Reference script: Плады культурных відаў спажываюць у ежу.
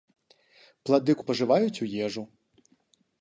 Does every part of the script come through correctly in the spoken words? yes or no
no